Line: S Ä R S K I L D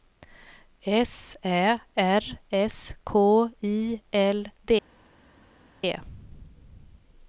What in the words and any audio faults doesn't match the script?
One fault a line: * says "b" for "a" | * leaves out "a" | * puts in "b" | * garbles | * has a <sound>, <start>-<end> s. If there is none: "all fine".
all fine